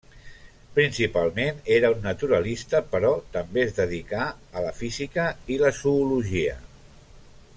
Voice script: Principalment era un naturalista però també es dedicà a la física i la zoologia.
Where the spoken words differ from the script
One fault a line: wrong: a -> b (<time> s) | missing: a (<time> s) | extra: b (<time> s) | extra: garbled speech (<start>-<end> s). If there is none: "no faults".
no faults